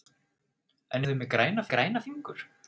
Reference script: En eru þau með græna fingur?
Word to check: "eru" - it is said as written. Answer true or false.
false